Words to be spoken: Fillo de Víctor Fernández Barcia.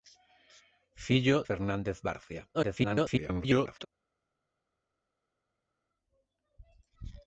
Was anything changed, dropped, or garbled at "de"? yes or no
yes